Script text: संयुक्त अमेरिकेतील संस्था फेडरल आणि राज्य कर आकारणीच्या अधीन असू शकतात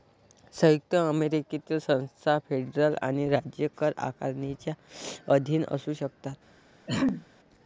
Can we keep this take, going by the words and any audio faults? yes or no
no